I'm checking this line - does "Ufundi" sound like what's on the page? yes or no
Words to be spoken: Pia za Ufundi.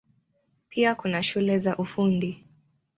yes